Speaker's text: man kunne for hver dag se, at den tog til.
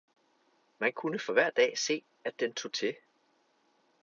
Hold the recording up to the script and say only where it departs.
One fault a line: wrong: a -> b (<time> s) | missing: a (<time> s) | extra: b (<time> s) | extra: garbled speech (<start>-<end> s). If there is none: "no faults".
no faults